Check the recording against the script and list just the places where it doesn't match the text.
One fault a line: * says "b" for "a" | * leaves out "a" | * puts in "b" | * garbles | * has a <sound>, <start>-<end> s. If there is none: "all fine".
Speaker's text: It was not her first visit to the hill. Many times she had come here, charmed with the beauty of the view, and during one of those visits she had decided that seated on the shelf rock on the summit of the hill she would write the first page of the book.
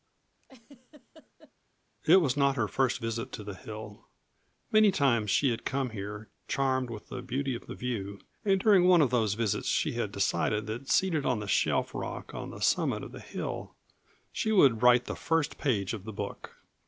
* has a laugh, 0.4-1.5 s